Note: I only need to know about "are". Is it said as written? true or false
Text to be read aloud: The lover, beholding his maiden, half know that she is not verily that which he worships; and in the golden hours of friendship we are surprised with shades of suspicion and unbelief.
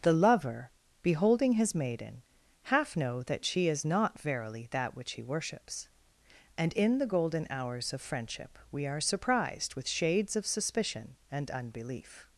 true